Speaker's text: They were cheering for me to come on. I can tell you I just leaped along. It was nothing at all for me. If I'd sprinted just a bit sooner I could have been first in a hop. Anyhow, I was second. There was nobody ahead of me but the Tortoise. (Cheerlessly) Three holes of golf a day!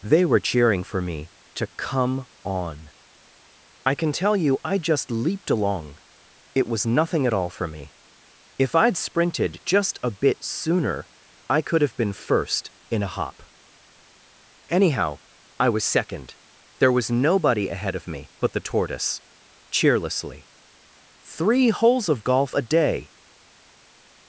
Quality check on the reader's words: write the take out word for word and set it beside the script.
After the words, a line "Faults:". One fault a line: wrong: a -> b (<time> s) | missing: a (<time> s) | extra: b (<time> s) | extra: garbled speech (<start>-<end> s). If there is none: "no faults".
They were cheering for me to come on. I can tell you I just leaped along. It was nothing at all for me. If I'd sprinted just a bit sooner I could have been first in a hop. Anyhow, I was second. There was nobody ahead of me but the Tortoise. (Cheerlessly) Three holes of golf a day!
Faults:
no faults